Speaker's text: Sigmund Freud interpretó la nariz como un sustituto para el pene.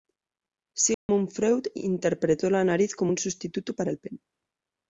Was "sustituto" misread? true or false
false